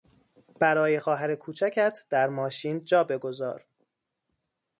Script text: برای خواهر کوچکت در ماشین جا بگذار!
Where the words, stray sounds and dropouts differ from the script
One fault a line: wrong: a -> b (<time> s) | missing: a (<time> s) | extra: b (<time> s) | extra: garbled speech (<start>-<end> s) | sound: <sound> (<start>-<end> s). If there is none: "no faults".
no faults